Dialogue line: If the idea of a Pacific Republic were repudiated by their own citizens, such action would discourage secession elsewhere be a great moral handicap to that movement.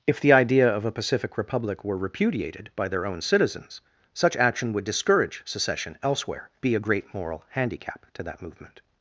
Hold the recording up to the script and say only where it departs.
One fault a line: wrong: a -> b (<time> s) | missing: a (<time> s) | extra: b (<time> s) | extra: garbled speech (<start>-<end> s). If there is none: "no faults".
no faults